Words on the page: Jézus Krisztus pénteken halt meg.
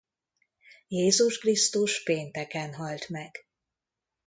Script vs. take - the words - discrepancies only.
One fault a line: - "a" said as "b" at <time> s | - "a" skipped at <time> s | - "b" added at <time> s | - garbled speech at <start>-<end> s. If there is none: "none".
none